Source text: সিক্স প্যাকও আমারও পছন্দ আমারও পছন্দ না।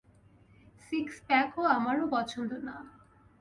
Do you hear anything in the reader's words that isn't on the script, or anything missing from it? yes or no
yes